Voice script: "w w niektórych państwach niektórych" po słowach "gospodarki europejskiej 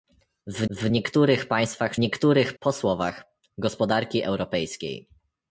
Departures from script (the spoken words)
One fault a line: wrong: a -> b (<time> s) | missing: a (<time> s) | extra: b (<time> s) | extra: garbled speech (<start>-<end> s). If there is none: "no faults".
no faults